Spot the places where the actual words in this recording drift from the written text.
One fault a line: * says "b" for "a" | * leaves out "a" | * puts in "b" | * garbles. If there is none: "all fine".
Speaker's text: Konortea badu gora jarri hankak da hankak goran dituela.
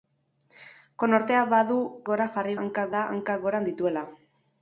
all fine